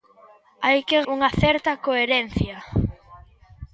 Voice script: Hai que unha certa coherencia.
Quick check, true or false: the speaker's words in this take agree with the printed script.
true